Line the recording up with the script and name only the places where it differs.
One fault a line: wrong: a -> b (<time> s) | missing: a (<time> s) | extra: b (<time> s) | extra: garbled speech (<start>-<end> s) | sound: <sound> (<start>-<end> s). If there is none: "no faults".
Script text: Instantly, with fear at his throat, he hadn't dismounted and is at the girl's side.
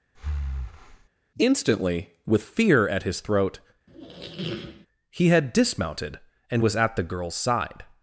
sound: breath (0.1-1.1 s)
sound: squeak (3.9-4.9 s)
wrong: hadn't -> had (5.3 s)
wrong: is -> was (6.6 s)